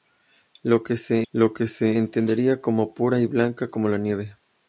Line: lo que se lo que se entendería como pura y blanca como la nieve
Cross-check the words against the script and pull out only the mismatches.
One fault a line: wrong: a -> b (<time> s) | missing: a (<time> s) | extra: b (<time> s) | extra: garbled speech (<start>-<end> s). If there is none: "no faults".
no faults